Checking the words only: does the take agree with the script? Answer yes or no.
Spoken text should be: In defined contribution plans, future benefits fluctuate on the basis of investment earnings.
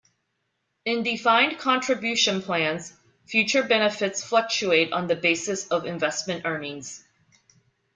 yes